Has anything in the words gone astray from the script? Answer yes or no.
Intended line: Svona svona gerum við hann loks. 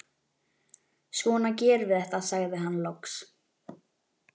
yes